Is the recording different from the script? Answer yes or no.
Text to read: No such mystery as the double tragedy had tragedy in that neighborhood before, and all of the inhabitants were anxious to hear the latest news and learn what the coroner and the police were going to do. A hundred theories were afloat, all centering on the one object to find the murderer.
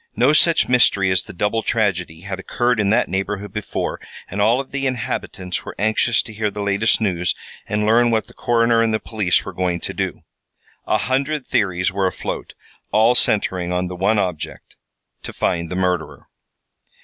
yes